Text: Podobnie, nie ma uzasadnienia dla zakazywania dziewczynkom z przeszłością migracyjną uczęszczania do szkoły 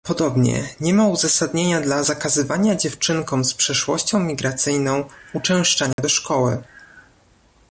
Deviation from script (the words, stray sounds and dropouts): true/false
true